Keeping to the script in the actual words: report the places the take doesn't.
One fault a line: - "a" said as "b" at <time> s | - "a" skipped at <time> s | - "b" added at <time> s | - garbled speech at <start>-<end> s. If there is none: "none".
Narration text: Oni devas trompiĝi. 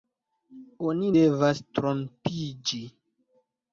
none